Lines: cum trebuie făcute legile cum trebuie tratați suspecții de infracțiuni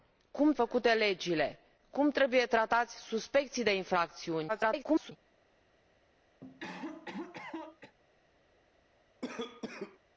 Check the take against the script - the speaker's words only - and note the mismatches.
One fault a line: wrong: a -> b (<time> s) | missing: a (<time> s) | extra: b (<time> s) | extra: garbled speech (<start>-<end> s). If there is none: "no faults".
missing: trebuie (0.5 s)
extra: garbled speech (4.5-5.1 s)